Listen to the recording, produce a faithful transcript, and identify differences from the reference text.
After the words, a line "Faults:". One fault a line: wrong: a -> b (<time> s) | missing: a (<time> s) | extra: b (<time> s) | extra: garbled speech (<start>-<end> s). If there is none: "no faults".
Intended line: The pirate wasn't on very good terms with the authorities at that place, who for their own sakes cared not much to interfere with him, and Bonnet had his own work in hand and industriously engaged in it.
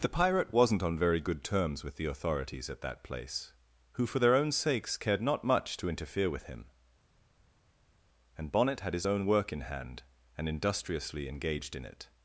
The pirate wasn't on very good terms with the authorities at that place, who for their own sakes cared not much to interfere with him, and Bonnet had his own work in hand and industriously engaged in it.
Faults:
no faults